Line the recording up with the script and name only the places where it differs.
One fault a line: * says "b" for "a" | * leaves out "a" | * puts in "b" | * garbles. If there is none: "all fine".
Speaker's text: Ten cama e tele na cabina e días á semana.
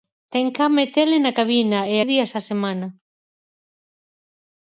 all fine